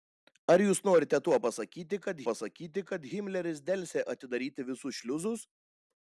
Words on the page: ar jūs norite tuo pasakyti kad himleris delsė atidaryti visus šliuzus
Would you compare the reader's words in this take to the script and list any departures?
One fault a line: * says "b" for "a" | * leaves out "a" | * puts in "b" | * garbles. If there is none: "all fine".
* puts in "pasakyti kad"